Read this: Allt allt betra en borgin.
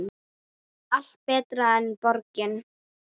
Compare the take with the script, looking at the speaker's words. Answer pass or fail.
fail